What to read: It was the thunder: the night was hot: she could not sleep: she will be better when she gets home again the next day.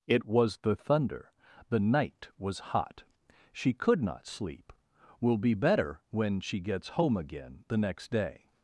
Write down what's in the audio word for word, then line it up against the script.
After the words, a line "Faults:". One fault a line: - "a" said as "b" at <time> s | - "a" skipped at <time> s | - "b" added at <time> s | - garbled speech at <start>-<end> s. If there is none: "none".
It was the thunder: the night was hot: she could not sleep: will be better when she gets home again the next day.
Faults:
- "she" skipped at 4.7 s